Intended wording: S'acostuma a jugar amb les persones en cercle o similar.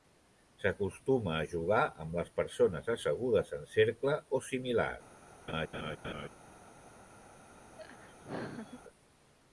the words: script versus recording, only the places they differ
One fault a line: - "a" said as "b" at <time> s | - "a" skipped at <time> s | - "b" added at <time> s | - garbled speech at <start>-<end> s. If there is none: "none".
- "assegudes" added at 3.0 s